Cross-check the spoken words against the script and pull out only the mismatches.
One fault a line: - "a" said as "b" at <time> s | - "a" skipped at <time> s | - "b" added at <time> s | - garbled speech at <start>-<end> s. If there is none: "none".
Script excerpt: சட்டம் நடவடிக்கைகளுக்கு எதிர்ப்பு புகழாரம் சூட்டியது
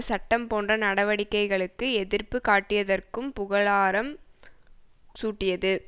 - "போன்ற" added at 0.5 s
- "காட்டியதற்கும்" added at 2.5 s